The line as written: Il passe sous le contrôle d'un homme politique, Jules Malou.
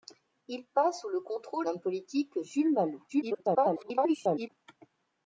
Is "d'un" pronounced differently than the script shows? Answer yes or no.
yes